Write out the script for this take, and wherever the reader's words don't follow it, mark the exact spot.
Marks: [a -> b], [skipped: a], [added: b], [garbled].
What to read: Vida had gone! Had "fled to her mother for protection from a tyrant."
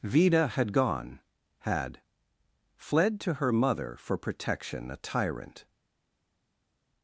Vida had gone! Had "fled to her mother for protection [skipped: from] a tyrant."